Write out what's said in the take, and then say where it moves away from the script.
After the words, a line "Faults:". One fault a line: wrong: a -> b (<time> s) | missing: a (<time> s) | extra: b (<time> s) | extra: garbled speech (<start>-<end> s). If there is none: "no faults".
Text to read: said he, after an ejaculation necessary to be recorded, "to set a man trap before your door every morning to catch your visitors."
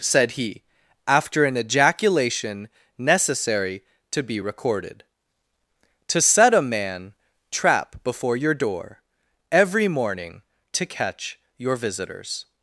said he, after an ejaculation necessary to be recorded, "to set a man trap before your door every morning to catch your visitors."
Faults:
no faults